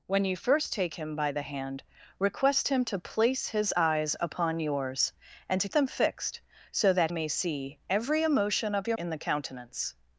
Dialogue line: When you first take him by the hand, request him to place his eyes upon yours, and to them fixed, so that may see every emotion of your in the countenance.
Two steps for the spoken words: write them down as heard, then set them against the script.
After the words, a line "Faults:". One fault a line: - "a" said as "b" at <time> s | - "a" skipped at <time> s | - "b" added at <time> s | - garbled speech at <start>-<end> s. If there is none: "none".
When you first take him by the hand, request him to place his eyes upon yours, and to them fixed, so that may see every emotion of your in the countenance.
Faults:
none